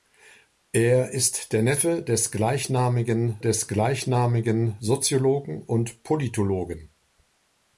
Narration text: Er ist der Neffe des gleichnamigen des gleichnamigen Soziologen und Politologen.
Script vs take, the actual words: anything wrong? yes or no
no